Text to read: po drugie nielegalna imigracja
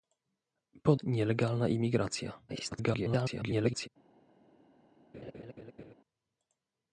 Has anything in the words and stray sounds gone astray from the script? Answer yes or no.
yes